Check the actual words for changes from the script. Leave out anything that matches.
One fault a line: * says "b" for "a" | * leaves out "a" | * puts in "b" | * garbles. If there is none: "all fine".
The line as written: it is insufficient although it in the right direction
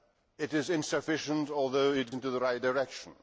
all fine